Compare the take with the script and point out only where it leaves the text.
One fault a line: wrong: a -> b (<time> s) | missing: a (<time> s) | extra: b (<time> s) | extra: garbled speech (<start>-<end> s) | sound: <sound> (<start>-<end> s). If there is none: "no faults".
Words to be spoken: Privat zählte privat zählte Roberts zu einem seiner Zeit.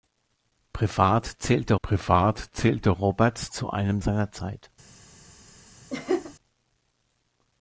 sound: laugh (5.9-6.3 s)